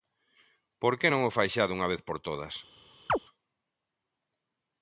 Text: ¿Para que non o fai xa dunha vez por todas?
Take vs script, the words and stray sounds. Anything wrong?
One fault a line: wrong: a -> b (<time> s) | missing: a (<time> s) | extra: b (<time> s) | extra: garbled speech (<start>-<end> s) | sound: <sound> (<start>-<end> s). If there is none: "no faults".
wrong: Para -> Por (0.8 s)
sound: chirp (3.1-3.2 s)